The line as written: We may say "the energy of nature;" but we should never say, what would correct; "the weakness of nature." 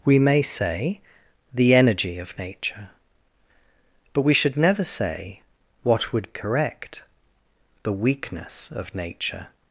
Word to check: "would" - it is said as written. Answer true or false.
true